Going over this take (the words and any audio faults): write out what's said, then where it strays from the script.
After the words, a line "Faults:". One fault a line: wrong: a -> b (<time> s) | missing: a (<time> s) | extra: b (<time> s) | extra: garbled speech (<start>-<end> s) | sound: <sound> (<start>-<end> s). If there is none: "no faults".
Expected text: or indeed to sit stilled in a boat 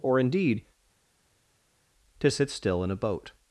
or indeed to sit still in a boat
Faults:
wrong: stilled -> still (2.5 s)